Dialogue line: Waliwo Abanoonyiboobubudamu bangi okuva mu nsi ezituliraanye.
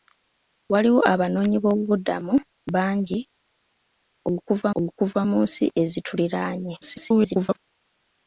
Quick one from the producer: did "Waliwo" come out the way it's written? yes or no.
yes